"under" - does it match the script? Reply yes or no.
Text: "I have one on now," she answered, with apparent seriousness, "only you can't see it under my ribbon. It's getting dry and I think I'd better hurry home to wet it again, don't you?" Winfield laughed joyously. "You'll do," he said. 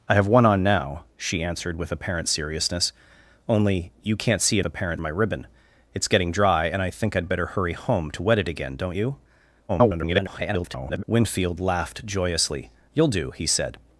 no